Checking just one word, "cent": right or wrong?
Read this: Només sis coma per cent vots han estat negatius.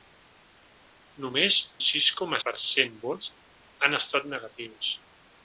right